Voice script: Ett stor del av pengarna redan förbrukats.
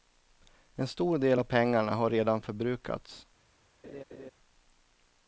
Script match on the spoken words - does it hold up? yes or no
no